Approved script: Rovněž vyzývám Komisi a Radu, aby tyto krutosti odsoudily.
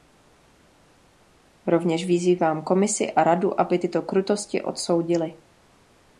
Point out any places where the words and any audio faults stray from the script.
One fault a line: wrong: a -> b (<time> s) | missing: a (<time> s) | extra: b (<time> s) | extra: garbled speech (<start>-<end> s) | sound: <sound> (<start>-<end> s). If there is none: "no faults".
no faults